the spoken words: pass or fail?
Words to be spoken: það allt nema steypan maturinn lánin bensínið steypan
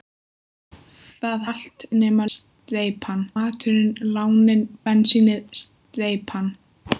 pass